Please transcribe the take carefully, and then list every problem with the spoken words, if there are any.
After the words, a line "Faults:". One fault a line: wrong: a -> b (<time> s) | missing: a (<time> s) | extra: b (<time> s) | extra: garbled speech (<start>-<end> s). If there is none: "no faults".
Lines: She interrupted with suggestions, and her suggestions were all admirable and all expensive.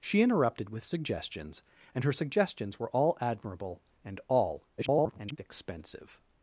She interrupted with suggestions, and her suggestions were all admirable and all [garbled] expensive.
Faults:
extra: garbled speech (4.8-5.4 s)